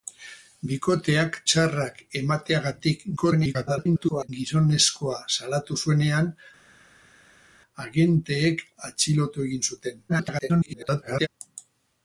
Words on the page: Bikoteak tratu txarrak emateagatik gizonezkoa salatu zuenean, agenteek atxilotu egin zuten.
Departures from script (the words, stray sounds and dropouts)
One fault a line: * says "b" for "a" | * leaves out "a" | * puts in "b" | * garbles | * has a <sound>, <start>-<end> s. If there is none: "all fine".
* leaves out "tratu"
* garbles
* garbles